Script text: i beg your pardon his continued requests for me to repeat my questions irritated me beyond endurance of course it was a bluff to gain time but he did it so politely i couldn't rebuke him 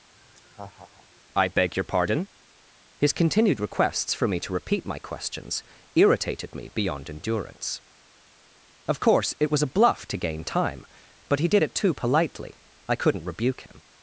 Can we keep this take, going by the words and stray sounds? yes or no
no